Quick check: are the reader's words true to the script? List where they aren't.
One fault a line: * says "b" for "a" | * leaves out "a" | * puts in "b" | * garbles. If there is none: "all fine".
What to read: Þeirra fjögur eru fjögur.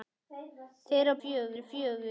all fine